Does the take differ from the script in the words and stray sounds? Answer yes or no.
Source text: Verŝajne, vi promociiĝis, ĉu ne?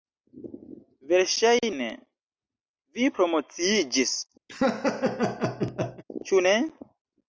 yes